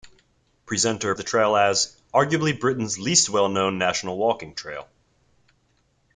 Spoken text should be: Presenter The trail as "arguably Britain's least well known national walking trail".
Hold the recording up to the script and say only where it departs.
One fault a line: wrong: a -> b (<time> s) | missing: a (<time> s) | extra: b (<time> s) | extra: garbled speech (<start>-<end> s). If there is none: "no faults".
no faults